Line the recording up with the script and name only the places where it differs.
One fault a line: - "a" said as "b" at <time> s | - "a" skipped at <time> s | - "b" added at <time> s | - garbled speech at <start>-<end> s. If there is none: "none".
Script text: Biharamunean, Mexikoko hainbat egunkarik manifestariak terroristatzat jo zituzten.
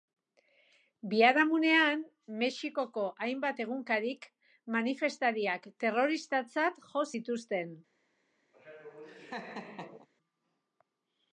none